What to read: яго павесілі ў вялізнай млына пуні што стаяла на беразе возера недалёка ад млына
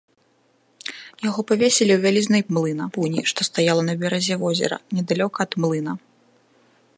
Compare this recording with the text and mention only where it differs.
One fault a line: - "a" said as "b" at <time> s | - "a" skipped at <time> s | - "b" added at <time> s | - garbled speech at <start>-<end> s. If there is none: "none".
none